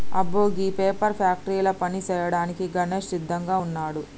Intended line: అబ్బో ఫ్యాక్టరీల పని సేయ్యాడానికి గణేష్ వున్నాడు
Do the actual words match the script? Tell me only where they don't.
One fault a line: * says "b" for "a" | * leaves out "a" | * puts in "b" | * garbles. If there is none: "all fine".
* puts in "గీ పేపర్"
* puts in "సిద్దంగా"